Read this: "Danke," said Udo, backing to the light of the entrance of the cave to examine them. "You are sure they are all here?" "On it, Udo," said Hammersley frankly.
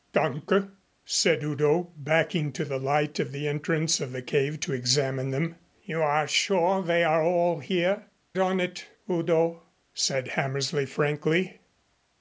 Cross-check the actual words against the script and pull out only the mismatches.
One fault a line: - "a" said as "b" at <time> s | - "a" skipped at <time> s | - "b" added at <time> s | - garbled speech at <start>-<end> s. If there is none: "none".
none